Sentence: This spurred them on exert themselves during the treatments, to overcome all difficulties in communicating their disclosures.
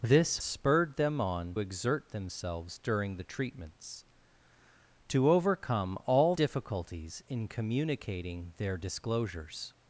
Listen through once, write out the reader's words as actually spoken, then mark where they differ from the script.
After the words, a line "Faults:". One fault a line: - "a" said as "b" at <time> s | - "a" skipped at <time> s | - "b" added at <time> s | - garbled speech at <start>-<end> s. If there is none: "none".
This spurred them on exert themselves during the treatments, to overcome all difficulties in communicating their disclosures.
Faults:
none